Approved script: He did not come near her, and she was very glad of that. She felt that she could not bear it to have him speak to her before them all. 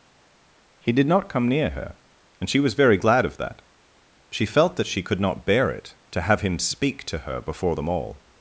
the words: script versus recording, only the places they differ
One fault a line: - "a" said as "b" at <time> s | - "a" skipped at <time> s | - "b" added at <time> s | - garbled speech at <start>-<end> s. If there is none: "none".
none